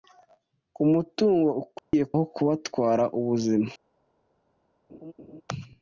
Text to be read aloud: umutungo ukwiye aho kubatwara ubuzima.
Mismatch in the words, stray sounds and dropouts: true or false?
true